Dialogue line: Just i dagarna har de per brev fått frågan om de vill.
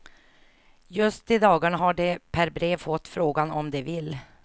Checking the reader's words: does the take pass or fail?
pass